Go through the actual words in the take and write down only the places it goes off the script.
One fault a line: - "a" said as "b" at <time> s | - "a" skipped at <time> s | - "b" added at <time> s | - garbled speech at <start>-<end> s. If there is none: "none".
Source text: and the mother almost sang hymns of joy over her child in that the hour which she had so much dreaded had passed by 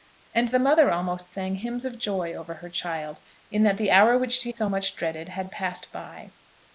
- "had" skipped at 4.5 s